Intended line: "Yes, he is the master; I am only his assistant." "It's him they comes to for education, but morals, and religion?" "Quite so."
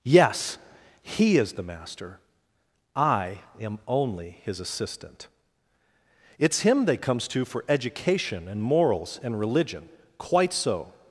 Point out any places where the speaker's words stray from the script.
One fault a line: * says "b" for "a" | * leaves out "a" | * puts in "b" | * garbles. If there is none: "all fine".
* says "and" for "but"